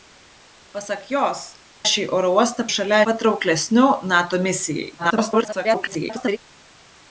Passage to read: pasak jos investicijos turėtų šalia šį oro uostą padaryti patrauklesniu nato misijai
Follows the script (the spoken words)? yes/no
no